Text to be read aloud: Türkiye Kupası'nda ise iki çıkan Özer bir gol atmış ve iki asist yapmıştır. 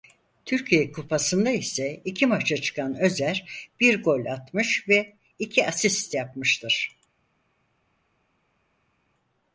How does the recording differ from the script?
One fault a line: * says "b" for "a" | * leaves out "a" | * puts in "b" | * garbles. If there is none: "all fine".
* puts in "maça"